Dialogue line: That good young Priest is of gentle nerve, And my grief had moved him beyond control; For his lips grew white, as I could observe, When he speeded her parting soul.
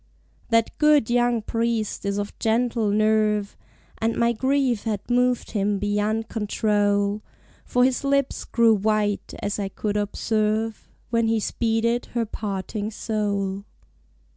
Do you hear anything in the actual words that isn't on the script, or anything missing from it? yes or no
no